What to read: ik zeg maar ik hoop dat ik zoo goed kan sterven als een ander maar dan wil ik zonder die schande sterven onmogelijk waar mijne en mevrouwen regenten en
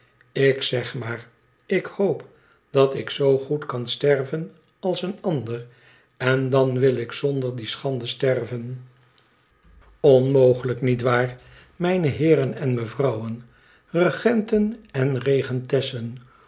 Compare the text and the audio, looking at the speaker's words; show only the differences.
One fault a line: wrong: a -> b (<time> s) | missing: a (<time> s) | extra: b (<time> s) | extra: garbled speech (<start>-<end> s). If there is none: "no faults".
wrong: maar -> en (6.2 s)
extra: niet (10.8 s)
extra: heeren (12.1 s)